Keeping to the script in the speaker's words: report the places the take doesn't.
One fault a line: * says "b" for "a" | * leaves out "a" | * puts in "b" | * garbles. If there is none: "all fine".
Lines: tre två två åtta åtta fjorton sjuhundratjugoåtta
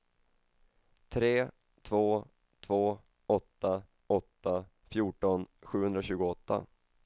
all fine